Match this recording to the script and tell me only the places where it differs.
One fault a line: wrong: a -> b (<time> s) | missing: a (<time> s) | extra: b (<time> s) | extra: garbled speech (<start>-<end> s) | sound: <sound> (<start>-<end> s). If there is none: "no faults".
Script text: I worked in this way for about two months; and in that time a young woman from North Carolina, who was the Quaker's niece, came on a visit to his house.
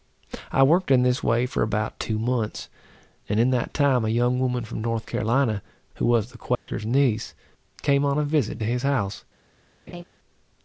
sound: dropout (6.6-6.7 s)
sound: laugh (9.9-10.0 s)